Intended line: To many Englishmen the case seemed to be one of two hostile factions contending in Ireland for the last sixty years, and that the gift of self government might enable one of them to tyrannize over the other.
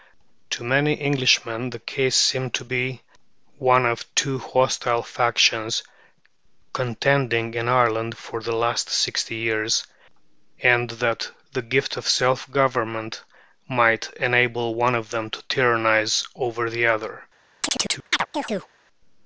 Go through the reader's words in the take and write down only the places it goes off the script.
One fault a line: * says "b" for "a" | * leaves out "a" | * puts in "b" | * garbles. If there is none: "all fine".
all fine